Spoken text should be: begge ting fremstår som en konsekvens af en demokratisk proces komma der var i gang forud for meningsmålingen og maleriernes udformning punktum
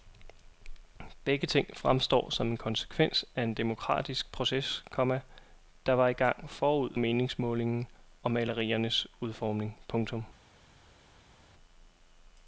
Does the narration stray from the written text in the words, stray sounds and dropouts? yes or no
yes